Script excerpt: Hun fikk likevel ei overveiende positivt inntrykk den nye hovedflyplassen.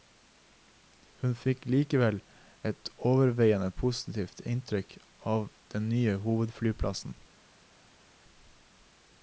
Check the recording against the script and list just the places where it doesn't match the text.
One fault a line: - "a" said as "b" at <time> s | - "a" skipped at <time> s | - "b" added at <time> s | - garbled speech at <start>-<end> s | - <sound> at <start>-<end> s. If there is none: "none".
- "ei" said as "et" at 2.7 s
- "av" added at 5.3 s